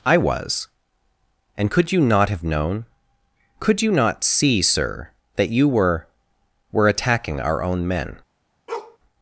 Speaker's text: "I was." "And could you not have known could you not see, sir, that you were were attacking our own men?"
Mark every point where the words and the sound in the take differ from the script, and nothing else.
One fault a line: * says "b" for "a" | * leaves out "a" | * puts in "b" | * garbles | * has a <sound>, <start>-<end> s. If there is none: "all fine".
* has a bark, 8.7-9.0 s